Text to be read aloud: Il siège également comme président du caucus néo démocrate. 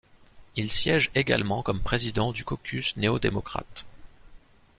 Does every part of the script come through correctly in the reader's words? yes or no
yes